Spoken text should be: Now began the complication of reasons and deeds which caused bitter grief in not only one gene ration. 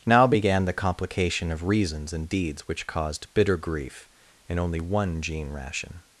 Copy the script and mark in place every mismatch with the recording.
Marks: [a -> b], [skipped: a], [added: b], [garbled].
Now began the complication of reasons and deeds which caused bitter grief in [skipped: not] only one gene ration.